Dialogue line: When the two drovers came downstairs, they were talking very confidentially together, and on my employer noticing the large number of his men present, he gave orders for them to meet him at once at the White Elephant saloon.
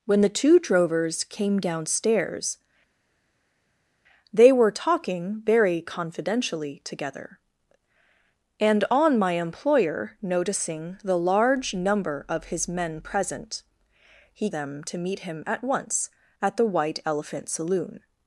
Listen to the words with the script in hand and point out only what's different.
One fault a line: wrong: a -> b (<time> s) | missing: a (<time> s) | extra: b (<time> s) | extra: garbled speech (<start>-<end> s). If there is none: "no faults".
missing: gave orders for (14.5 s)